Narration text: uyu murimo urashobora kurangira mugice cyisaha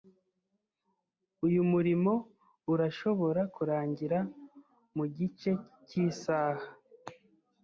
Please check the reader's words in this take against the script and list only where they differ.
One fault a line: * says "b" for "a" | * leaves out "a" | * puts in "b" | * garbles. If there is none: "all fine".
all fine